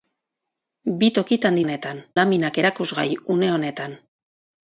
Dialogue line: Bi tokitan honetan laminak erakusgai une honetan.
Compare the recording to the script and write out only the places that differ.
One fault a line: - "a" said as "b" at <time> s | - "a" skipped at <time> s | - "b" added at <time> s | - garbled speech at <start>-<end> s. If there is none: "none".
none